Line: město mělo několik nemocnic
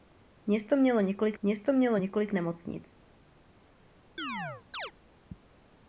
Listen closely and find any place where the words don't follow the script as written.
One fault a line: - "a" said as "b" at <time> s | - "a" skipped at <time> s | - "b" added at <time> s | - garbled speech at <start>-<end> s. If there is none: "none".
- "město mělo několik" added at 1.4 s